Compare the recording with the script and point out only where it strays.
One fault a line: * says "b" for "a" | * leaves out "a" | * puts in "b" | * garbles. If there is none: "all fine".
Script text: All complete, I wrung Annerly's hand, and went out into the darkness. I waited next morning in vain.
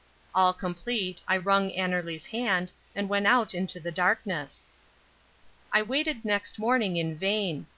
all fine